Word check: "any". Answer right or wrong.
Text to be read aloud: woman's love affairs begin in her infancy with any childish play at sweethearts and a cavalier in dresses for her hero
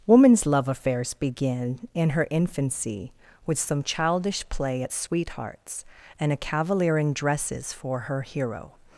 wrong